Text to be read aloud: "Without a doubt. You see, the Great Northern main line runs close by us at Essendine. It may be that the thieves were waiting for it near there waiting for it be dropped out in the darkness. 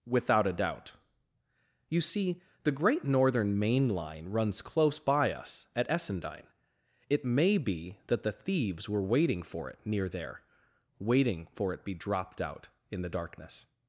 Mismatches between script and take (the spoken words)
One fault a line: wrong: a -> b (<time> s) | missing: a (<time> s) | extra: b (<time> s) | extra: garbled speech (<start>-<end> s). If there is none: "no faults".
no faults